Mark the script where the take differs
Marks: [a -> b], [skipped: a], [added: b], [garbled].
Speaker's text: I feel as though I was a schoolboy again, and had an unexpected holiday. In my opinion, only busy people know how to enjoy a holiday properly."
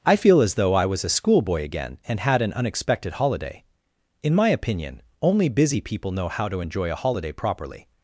I feel as though I was a schoolboy again, and had an unexpected holiday. In my opinion, only busy people know how to enjoy a holiday properly."